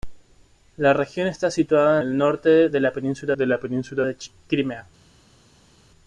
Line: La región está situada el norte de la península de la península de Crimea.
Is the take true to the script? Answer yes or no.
yes